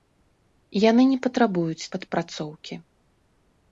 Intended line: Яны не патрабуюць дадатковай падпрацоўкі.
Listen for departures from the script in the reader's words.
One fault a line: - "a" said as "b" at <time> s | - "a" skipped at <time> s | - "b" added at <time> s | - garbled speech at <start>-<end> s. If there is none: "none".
- "дадатковай" skipped at 1.9 s